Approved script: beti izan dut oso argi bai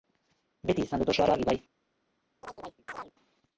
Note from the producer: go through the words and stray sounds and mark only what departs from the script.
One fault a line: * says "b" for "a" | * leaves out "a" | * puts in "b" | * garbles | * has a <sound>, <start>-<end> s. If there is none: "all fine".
* puts in "oso"
* has a chirp, 2.4-3.1 s